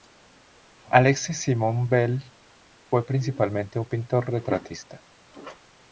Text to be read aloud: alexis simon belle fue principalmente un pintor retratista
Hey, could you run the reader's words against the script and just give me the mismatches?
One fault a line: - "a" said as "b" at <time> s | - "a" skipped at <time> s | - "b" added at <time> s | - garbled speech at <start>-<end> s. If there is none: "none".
none